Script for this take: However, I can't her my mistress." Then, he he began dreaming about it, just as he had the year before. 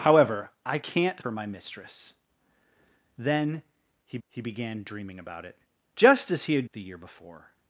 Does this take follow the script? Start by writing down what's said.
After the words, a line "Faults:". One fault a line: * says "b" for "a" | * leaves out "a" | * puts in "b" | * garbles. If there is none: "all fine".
However, I can't her my mistress." Then, he he began dreaming about it, just as he had the year before.
Faults:
all fine